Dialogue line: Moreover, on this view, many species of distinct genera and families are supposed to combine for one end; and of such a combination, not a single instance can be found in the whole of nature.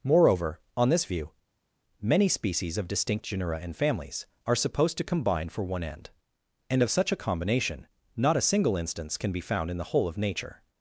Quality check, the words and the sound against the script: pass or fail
pass